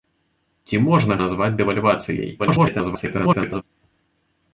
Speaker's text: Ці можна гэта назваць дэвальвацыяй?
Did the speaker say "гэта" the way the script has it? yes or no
no